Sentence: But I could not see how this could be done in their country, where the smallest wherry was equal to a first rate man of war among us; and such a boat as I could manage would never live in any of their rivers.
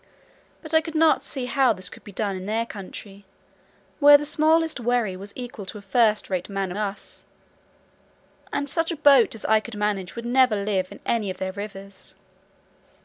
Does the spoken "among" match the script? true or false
false